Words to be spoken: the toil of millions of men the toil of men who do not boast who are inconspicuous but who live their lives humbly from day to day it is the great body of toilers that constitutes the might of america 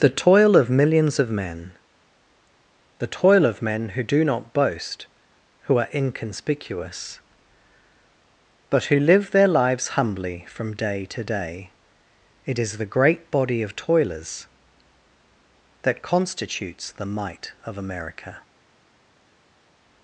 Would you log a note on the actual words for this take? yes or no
no